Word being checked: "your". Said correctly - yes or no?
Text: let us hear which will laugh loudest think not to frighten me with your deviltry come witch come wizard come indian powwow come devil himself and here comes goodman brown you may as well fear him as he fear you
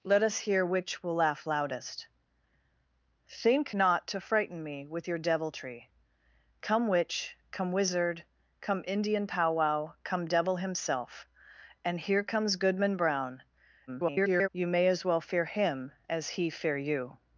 yes